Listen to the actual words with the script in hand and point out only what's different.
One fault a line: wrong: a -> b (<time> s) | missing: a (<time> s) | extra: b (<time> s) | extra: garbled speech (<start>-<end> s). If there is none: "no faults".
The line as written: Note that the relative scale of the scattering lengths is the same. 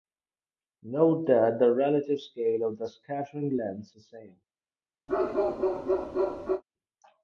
missing: is (4.0 s)